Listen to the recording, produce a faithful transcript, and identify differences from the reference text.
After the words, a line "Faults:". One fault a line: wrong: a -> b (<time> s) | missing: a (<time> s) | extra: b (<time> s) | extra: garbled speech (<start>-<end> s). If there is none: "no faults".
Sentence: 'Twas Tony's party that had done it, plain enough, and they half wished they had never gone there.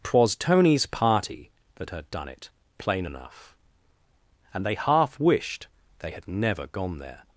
'Twas Tony's party that had done it, plain enough, and they half wished they had never gone there.
Faults:
no faults